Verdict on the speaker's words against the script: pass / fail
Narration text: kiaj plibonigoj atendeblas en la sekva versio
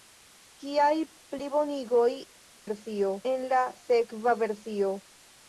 fail